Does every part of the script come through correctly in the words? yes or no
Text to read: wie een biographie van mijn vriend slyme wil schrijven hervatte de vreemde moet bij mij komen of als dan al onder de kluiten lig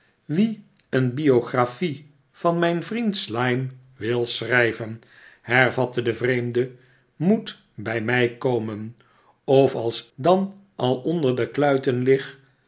yes